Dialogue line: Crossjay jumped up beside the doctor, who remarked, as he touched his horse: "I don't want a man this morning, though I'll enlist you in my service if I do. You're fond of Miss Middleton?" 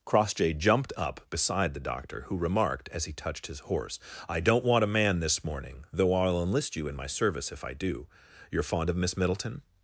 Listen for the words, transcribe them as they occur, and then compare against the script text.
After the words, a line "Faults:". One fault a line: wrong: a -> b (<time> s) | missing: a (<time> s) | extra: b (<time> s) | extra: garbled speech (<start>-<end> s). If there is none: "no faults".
Crossjay jumped up beside the doctor, who remarked, as he touched his horse: "I don't want a man this morning, though I'll enlist you in my service if I do. You're fond of Miss Middleton?"
Faults:
no faults